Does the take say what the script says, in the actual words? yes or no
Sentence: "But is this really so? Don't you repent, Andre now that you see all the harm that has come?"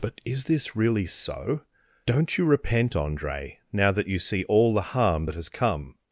yes